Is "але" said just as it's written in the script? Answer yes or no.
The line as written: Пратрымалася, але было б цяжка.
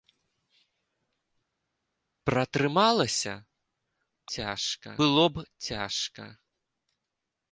no